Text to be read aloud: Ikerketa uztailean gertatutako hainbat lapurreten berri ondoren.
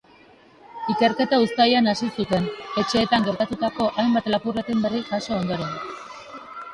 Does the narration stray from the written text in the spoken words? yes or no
yes